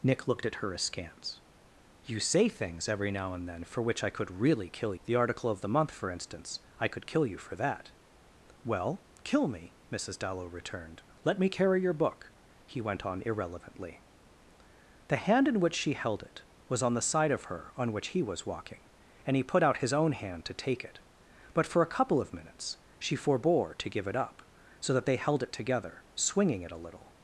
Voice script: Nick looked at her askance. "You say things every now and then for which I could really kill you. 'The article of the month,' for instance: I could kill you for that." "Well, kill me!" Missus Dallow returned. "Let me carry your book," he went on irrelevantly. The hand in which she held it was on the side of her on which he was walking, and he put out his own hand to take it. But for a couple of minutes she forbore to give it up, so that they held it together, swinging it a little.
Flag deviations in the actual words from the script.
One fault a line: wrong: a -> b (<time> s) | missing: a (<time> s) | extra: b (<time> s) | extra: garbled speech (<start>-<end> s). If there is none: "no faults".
missing: you (5.0 s)